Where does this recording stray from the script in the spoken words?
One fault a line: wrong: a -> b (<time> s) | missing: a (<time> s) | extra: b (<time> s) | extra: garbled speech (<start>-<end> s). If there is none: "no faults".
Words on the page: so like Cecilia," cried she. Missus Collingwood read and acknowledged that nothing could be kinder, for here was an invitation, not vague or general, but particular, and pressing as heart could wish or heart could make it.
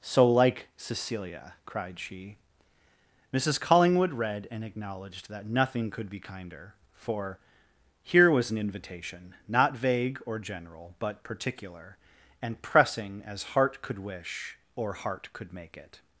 no faults